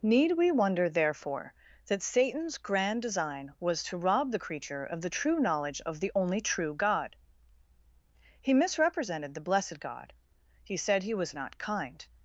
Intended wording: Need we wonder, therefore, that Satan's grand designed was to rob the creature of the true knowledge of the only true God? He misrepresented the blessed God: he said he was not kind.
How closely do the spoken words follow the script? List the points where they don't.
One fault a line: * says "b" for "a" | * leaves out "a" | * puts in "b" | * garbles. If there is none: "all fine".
* says "design" for "designed"